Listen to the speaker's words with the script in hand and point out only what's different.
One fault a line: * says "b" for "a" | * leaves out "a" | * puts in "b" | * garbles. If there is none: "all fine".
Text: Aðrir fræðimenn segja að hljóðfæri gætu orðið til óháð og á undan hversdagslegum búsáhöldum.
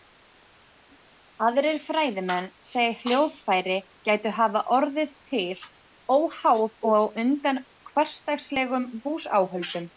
* puts in "hafa"